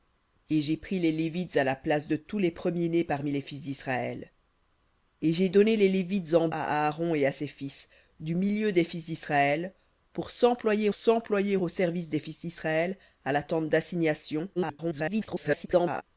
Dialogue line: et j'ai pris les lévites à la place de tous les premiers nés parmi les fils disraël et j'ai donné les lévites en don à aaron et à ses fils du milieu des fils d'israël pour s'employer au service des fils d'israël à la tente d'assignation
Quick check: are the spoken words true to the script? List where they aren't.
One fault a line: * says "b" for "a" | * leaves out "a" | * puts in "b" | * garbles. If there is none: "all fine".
* leaves out "don"
* puts in "s'employer"
* garbles